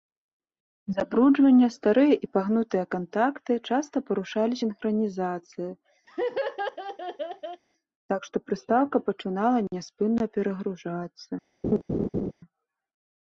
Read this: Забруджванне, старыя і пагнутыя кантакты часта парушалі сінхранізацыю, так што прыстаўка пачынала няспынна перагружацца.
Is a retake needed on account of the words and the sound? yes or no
yes